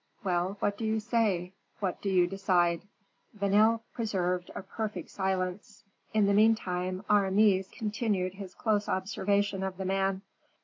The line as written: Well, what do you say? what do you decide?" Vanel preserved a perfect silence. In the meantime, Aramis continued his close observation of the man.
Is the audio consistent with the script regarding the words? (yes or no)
yes